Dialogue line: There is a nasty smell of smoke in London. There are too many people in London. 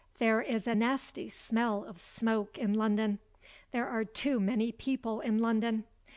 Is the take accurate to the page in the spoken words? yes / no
yes